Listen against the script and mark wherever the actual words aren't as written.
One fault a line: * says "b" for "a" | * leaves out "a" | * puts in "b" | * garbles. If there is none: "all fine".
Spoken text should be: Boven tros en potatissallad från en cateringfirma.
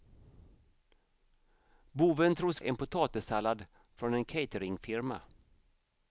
all fine